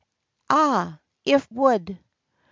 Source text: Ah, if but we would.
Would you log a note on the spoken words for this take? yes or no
yes